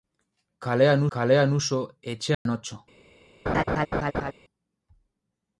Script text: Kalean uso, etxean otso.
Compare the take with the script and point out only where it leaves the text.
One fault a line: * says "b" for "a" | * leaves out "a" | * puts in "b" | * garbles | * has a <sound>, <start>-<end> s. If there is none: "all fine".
* puts in "kalean"
* has a dropout, 2.3-2.5 s
* has a laugh, 3.5-4.3 s